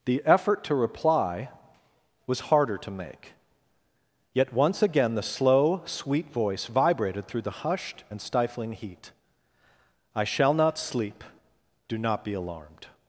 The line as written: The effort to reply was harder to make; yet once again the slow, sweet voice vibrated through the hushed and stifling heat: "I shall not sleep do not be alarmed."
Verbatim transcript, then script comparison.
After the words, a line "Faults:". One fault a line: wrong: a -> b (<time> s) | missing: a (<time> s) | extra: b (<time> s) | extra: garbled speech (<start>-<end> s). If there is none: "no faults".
The effort to reply was harder to make; yet once again the slow, sweet voice vibrated through the hushed and stifling heat: "I shall not sleep do not be alarmed."
Faults:
no faults